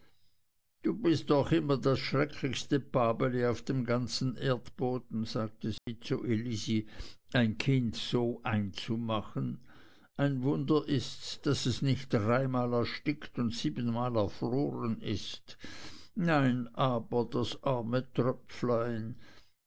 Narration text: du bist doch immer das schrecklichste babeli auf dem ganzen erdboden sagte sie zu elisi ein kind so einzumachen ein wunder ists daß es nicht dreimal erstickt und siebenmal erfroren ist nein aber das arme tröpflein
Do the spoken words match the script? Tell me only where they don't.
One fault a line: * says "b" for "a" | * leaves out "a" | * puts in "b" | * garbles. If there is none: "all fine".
all fine